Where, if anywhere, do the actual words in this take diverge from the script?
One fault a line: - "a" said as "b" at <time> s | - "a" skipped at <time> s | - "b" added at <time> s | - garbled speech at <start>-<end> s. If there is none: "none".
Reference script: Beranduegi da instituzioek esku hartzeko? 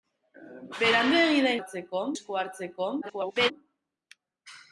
- "instituzioek" said as "hartzeko" at 1.6 s
- garbled speech at 3.0-3.5 s